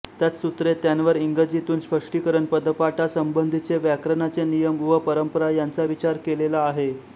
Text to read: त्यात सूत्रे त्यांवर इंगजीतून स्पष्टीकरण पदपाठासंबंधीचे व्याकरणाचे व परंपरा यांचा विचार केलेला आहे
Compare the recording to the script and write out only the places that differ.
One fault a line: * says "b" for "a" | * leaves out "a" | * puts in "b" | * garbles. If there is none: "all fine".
* puts in "नियम"